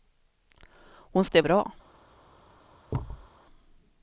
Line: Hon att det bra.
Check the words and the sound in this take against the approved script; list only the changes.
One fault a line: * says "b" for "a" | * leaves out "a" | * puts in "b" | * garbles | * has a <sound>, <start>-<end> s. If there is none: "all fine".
* has a thud, 2.9-3.3 s